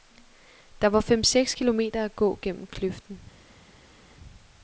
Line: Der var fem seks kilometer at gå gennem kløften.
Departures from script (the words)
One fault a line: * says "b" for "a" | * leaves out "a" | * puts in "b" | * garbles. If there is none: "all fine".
all fine